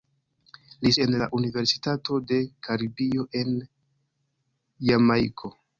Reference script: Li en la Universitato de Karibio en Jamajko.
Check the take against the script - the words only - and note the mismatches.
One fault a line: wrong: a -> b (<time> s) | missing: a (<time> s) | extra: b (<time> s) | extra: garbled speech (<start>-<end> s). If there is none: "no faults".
no faults